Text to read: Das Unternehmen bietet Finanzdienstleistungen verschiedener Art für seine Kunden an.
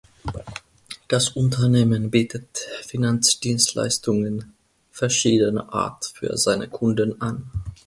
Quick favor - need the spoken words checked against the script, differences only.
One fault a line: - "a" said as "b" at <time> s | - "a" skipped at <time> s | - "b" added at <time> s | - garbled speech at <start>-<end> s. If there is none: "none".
none